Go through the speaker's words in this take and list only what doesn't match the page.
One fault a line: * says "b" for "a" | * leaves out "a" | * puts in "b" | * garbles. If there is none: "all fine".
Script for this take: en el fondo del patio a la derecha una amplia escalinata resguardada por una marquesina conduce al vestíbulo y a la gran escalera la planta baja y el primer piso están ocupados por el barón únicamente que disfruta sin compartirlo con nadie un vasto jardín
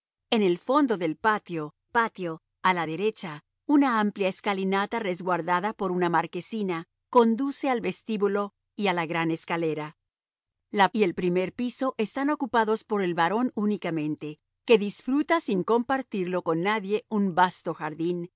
* puts in "patio"
* leaves out "planta baja"